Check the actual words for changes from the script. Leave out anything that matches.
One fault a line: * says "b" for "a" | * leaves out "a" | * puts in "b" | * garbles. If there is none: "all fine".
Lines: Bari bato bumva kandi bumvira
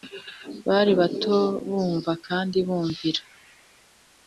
all fine